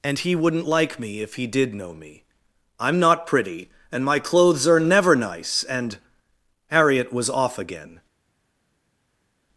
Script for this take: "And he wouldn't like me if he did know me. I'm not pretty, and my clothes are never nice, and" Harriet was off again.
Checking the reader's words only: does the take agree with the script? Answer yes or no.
yes